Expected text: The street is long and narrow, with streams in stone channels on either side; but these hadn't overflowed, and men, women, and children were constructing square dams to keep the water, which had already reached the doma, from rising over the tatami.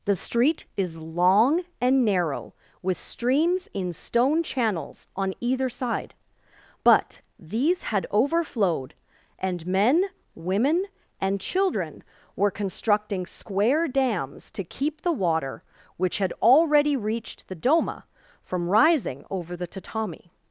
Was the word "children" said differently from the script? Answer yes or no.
no